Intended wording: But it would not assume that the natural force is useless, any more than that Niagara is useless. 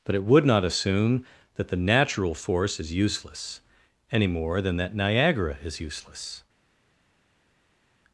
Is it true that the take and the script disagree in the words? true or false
false